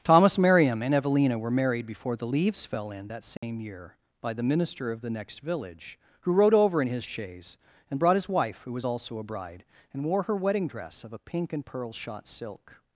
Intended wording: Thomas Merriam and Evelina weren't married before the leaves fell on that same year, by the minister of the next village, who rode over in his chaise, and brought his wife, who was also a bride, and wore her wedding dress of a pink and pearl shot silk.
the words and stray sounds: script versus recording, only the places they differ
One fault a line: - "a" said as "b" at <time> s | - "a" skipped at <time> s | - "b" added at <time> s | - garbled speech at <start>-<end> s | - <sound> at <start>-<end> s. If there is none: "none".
- "weren't" said as "were" at 1.4 s
- "on" said as "in" at 2.9 s
- dropout at 3.4-3.4 s